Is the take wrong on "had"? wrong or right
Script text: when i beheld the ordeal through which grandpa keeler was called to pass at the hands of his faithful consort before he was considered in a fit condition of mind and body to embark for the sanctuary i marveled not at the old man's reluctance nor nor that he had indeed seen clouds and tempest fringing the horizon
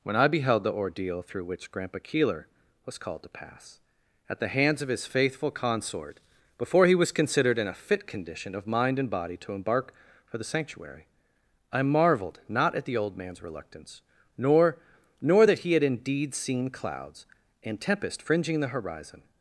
right